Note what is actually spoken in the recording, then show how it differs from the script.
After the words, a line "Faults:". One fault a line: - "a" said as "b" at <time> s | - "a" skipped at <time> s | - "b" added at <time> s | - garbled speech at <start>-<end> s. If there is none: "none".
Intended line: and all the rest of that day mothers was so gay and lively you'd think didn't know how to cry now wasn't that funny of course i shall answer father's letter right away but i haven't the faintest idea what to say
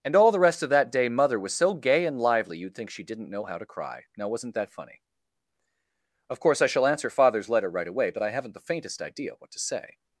and all the rest of that day mother was so gay and lively you'd think she didn't know how to cry now wasn't that funny of course i shall answer father's letter right away but i haven't the faintest idea what to say
Faults:
- "mothers" said as "mother" at 1.1 s
- "she" added at 2.9 s